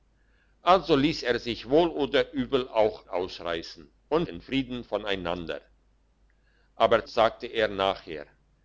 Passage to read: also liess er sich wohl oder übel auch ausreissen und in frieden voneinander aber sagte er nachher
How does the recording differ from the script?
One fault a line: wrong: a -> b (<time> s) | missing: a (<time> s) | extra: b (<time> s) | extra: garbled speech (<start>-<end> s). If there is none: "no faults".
no faults